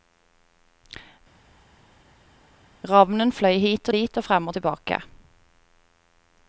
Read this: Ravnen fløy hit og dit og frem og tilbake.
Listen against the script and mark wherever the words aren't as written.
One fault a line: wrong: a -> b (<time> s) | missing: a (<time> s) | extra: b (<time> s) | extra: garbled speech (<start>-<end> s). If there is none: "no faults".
no faults